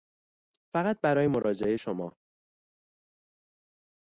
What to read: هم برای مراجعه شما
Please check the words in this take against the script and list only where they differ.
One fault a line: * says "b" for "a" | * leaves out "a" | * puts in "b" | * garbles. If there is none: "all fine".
* says "فقط" for "هم"